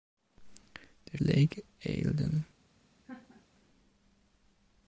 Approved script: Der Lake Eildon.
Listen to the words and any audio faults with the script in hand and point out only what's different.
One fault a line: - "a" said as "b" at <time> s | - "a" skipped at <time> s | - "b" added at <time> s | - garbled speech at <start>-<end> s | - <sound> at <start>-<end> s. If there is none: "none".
- laugh at 3.0-3.5 s